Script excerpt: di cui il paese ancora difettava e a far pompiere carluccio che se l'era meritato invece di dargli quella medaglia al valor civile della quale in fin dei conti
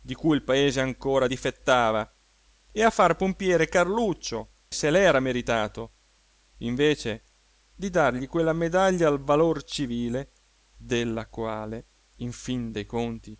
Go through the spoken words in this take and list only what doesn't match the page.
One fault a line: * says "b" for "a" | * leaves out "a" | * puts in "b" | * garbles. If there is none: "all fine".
* leaves out "che"